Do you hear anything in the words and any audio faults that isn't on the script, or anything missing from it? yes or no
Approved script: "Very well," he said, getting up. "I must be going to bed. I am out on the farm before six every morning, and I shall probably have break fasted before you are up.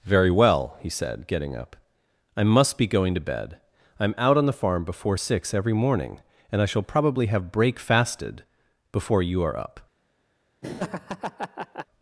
yes